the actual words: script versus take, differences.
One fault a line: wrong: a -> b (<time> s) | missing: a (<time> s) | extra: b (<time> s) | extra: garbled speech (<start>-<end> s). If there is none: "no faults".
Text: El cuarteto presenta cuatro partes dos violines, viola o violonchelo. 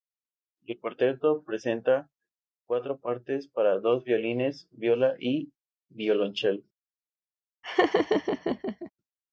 extra: para (3.5 s)
wrong: o -> y (5.2 s)